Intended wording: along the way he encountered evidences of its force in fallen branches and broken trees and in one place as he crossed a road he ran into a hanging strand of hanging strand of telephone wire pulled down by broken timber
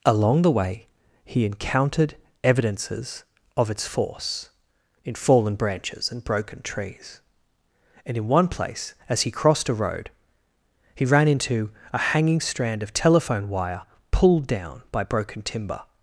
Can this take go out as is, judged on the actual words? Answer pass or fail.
fail